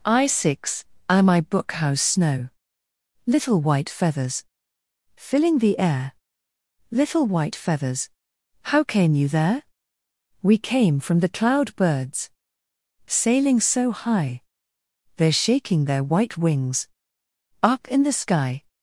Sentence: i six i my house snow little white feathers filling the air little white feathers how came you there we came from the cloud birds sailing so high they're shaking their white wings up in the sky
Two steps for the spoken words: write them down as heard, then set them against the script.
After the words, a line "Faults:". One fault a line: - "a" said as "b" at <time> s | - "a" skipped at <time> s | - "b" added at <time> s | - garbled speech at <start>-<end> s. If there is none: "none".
i six i my book house snow little white feathers filling the air little white feathers how came you there we came from the cloud birds sailing so high they're shaking their white wings up in the sky
Faults:
- "book" added at 1.4 s